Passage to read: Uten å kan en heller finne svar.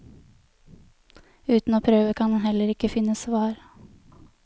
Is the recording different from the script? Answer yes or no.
yes